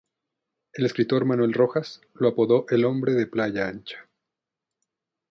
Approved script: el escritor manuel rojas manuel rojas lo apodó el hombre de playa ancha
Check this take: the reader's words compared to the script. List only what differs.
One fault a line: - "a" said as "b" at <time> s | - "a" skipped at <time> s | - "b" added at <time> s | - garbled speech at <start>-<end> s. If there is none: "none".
- "manuel rojas" skipped at 2.0 s